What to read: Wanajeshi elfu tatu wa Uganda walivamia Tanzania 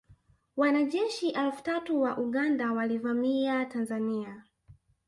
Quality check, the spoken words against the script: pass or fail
pass